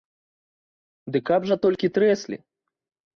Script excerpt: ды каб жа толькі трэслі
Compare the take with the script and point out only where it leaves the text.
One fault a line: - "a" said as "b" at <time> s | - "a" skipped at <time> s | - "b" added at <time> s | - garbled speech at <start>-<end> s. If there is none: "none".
none